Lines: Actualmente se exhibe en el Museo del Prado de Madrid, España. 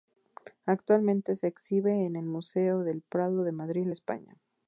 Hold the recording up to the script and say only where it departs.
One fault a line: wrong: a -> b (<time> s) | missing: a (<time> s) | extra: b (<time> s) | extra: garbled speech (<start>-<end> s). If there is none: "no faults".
no faults